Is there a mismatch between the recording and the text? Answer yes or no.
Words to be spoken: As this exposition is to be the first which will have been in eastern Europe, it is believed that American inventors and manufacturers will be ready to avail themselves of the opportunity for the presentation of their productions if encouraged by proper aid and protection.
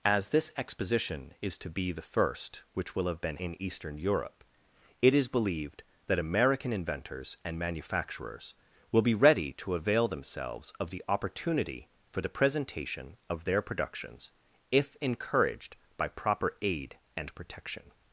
no